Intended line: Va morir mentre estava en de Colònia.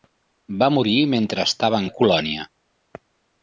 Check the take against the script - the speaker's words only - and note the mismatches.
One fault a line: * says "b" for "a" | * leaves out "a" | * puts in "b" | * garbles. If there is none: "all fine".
all fine